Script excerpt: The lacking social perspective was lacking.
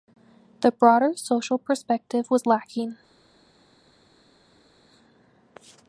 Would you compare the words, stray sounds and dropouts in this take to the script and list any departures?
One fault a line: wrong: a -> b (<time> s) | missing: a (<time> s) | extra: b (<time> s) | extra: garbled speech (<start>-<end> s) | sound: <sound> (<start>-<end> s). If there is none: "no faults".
wrong: lacking -> broader (0.7 s)